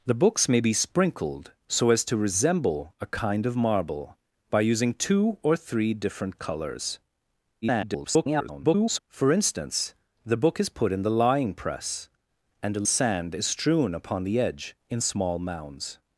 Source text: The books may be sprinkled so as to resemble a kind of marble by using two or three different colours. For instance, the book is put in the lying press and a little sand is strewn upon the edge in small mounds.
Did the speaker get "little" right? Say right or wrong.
wrong